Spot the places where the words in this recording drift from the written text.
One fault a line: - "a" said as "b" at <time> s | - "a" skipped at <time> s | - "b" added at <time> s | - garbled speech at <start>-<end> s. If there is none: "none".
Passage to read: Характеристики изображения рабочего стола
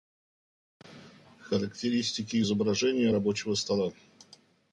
none